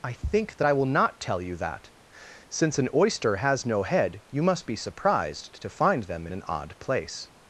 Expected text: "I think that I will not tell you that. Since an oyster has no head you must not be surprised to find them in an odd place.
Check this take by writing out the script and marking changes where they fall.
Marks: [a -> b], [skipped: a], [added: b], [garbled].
"I think that I will not tell you that. Since an oyster has no head you must [skipped: not] be surprised to find them in an odd place.